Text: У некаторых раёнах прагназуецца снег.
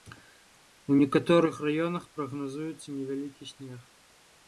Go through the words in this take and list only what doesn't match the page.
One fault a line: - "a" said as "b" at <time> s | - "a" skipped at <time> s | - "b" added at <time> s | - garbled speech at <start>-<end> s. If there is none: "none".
- "невялікі" added at 3.0 s